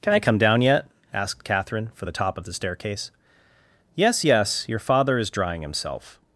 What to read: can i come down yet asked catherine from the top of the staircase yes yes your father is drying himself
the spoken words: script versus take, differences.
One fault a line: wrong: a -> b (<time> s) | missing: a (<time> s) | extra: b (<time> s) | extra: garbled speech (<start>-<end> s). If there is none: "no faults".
wrong: from -> for (1.9 s)